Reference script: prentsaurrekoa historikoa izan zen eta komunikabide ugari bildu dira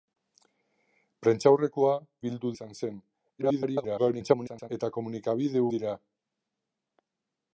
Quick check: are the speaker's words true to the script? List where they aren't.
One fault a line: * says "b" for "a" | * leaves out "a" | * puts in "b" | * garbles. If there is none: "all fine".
* says "bildu" for "historikoa"
* garbles
* leaves out "ugari bildu"